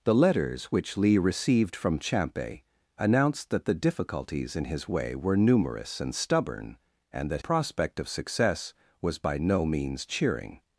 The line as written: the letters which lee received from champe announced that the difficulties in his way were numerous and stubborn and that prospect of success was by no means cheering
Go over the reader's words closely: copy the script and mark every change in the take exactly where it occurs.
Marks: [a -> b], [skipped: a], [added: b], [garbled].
the letters which lee received from champe announced that the difficulties in his way were numerous and stubborn and that prospect of success was by no means cheering